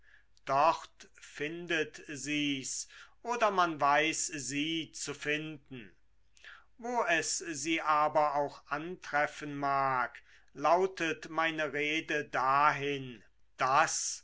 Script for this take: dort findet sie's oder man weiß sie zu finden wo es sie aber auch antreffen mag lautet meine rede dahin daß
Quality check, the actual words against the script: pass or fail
pass